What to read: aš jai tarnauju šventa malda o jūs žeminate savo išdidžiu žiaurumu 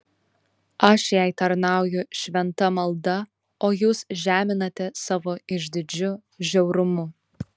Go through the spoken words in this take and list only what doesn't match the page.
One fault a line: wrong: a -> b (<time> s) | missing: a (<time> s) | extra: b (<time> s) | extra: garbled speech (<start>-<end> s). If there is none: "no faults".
no faults